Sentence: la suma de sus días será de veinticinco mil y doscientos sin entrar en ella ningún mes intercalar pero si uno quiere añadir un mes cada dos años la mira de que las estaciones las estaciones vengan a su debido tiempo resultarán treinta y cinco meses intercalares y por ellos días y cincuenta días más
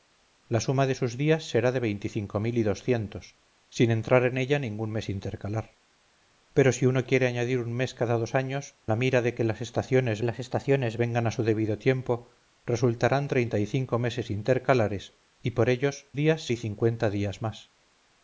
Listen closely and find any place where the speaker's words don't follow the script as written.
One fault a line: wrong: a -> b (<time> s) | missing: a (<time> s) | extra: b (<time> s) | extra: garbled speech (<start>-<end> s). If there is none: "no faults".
no faults